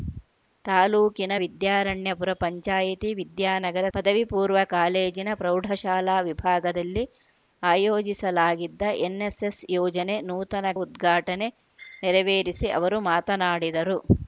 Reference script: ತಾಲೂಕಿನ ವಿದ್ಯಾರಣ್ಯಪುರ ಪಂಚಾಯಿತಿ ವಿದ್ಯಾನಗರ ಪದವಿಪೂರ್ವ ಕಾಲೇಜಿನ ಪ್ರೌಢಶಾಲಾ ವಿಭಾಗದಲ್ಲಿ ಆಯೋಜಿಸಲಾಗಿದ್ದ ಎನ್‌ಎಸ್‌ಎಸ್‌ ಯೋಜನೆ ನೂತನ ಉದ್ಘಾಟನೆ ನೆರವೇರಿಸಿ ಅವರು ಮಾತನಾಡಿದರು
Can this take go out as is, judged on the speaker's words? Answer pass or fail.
pass